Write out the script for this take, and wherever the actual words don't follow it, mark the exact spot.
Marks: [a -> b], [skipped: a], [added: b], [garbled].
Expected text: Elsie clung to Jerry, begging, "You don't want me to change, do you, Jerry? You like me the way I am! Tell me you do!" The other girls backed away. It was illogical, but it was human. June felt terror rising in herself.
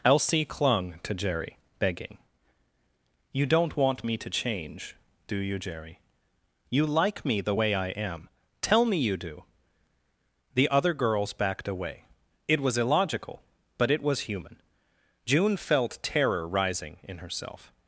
Elsie clung to Jerry, begging, "You don't want me to change, do you, Jerry? You like me the way I am! Tell me you do!" The other girls backed away. It was illogical, but it was human. June felt terror rising in herself.